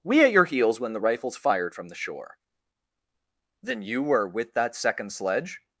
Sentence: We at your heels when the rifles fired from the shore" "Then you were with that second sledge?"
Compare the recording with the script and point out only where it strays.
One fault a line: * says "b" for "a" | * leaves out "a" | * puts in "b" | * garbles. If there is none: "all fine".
all fine